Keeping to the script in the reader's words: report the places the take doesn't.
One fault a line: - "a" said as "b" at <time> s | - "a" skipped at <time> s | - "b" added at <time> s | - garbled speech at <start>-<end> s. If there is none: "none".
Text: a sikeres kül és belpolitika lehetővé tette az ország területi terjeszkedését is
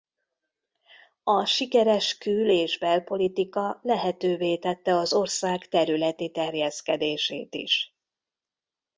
none